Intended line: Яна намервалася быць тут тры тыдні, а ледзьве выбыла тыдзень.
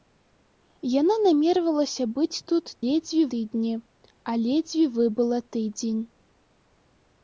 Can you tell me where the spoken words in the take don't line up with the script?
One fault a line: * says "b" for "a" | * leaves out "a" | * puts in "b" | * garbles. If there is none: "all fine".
* says "ледзьве" for "тры"